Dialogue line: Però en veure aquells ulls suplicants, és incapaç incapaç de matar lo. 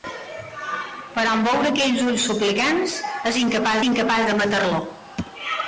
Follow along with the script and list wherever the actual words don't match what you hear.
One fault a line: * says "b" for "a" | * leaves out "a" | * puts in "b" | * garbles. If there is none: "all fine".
all fine